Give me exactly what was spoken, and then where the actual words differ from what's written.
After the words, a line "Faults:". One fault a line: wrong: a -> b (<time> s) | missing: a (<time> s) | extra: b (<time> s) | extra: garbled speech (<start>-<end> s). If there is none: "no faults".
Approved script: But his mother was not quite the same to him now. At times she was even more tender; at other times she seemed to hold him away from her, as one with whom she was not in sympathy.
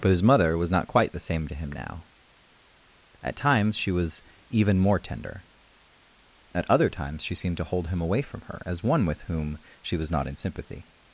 But his mother was not quite the same to him now. At times she was even more tender; at other times she seemed to hold him away from her, as one with whom she was not in sympathy.
Faults:
no faults